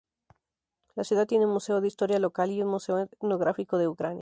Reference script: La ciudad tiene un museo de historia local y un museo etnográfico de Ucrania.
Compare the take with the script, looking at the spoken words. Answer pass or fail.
pass